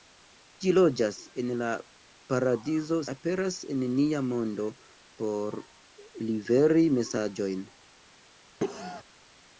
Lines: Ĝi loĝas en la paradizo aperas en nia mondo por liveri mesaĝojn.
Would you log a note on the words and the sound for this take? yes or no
yes